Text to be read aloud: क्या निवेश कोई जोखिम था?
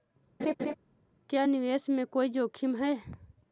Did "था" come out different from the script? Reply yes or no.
yes